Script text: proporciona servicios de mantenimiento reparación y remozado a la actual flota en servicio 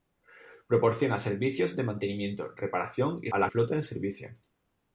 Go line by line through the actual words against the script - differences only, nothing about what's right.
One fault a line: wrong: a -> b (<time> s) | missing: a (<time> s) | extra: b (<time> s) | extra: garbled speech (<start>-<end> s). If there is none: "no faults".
missing: remozado (3.3 s)
missing: actual (3.5 s)